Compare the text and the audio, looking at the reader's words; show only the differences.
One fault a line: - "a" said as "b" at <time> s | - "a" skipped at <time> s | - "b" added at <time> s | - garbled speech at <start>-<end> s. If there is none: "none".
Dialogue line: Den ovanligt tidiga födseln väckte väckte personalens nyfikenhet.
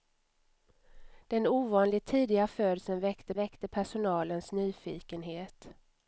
none